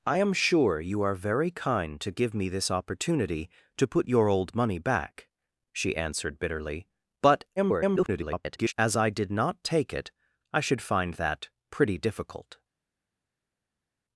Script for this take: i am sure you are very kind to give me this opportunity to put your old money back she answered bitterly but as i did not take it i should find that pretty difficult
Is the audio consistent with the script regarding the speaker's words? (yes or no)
no